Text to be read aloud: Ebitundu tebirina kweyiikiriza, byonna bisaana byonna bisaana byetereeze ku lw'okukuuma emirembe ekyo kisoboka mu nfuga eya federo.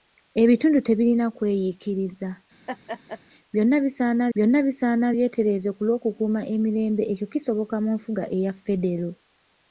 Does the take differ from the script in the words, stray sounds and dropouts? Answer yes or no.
yes